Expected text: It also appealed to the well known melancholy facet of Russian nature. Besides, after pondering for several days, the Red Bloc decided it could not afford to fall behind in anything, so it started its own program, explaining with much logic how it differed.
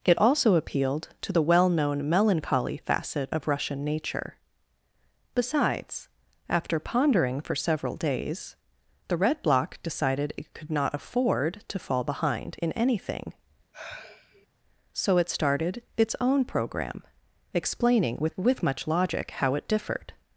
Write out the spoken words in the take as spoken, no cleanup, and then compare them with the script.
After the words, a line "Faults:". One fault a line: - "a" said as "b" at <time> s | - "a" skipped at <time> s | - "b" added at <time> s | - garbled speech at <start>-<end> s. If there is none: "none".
It also appealed to the well known melancholy facet of Russian nature. Besides, after pondering for several days, the Red Bloc decided it could not afford to fall behind in anything, so it started its own program, explaining with with much logic how it differed.
Faults:
- "with" added at 18.4 s